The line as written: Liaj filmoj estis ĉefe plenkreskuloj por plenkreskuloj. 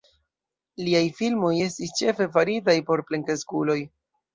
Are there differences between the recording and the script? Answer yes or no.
yes